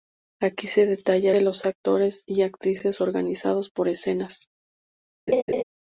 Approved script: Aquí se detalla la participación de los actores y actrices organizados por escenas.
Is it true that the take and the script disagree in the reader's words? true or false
true